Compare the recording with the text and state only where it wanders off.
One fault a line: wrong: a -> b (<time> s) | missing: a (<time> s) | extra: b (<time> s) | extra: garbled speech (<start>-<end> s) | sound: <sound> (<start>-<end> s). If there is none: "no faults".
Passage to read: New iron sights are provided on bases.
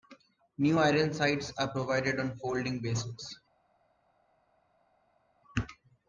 extra: folding (2.4 s)